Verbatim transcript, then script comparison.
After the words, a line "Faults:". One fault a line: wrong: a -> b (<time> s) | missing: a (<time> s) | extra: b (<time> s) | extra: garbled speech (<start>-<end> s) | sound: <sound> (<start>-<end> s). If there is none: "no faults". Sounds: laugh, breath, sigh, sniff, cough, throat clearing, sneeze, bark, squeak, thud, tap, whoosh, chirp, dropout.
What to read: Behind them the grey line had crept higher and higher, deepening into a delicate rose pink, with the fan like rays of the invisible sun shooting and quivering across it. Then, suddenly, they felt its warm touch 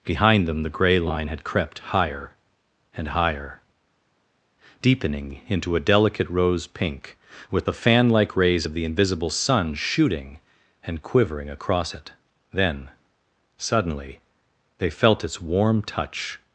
Behind them the grey line had crept higher and higher, deepening into a delicate rose pink, with the fan like rays of the invisible sun shooting and quivering across it. Then, suddenly, they felt its warm touch
Faults:
no faults